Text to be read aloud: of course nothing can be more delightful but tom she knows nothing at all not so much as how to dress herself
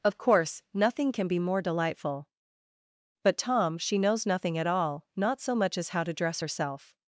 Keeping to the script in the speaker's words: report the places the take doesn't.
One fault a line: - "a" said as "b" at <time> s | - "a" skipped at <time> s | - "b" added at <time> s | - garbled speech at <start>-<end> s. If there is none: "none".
none